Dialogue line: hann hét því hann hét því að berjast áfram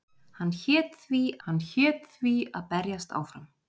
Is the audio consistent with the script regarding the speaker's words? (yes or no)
yes